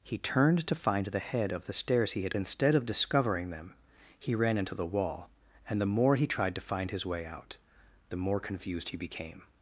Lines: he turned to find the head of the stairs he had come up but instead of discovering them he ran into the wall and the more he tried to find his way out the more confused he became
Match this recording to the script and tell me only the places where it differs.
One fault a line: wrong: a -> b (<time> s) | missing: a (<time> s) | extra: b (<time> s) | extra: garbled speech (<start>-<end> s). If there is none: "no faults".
missing: come up but (2.4 s)